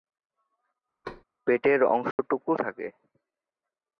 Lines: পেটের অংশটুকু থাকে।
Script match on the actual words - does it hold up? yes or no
yes